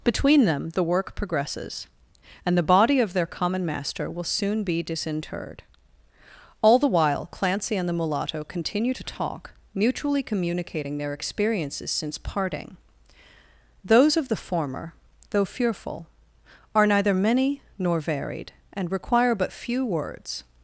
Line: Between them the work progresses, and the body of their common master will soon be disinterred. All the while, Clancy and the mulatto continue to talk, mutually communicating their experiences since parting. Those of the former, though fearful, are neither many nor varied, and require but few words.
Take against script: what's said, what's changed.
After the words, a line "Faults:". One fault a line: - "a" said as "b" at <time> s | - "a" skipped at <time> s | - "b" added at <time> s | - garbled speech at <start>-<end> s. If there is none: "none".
Between them the work progresses, and the body of their common master will soon be disinterred. All the while, Clancy and the mulatto continue to talk, mutually communicating their experiences since parting. Those of the former, though fearful, are neither many nor varied, and require but few words.
Faults:
none